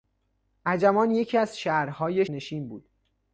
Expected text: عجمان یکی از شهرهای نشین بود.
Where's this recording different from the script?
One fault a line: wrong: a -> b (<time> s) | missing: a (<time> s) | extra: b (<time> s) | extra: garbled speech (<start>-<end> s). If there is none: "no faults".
no faults